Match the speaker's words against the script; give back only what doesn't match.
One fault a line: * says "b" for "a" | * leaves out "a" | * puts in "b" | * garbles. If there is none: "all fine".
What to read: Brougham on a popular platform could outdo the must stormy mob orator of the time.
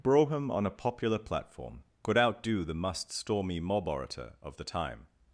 all fine